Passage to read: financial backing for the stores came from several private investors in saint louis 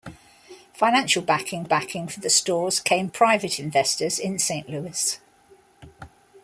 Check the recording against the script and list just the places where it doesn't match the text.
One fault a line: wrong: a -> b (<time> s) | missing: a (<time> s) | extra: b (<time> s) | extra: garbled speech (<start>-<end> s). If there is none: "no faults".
extra: backing (1.6 s)
missing: from several (3.1 s)